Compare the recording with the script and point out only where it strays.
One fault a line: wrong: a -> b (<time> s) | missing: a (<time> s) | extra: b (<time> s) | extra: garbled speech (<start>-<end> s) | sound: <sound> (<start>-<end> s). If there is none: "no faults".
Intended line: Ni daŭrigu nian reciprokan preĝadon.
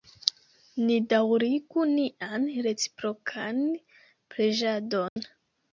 sound: dropout (5.1-5.2 s)